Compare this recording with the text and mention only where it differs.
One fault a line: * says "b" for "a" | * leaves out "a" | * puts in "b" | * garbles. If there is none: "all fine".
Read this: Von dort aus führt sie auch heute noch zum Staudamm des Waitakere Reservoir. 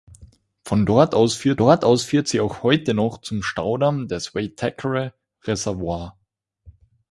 * puts in "dort aus führt"